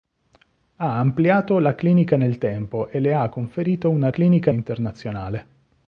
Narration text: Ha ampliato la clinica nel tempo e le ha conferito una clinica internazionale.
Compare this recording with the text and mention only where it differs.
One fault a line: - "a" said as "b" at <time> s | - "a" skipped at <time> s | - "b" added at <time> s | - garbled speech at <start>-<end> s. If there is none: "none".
none